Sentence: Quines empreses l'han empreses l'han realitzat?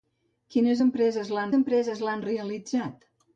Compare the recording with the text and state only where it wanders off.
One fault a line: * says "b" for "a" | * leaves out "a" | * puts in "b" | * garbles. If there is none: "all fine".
all fine